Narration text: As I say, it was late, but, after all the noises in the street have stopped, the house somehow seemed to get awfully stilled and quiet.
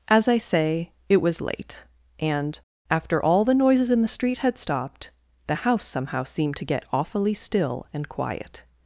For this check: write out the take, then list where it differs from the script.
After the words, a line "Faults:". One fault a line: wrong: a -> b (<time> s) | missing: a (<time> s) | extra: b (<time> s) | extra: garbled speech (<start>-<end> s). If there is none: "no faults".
As I say, it was late, and, after all the noises in the street had stopped, the house somehow seemed to get awfully still and quiet.
Faults:
wrong: but -> and (2.2 s)
wrong: have -> had (4.4 s)
wrong: stilled -> still (7.3 s)